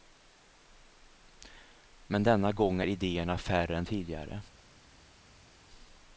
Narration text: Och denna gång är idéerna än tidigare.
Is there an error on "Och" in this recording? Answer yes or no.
yes